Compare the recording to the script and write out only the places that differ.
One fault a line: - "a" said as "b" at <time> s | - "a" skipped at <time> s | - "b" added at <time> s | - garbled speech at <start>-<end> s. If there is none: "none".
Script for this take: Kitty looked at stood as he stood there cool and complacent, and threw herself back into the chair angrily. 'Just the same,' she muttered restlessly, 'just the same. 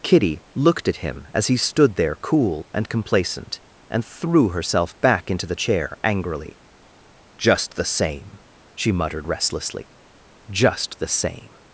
- "stood" said as "him" at 1.0 s